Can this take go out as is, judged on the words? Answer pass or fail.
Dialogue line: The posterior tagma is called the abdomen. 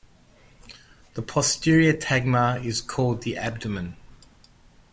pass